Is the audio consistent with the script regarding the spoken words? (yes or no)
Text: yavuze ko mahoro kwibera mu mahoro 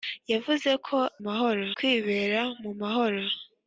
yes